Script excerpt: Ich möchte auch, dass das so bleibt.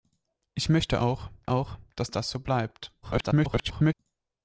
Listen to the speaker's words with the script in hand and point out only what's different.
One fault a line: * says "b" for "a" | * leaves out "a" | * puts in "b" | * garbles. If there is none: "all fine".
* puts in "auch"
* garbles